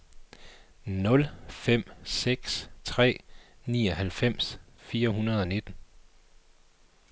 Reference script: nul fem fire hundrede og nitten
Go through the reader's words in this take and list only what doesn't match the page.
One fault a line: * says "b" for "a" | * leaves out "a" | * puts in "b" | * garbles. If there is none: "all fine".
* puts in "seks tre nioghalvfems"